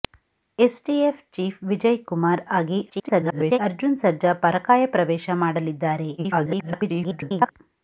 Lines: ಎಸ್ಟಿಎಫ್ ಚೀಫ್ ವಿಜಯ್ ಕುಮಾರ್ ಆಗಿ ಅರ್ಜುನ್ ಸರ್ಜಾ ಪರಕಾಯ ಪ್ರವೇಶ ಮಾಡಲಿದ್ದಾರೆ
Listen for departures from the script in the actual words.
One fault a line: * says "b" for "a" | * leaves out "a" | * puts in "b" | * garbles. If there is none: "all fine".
* garbles
* garbles